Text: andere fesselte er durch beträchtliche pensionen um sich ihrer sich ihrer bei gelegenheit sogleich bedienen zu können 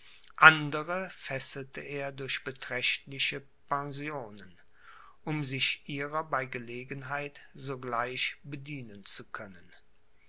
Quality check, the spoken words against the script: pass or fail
fail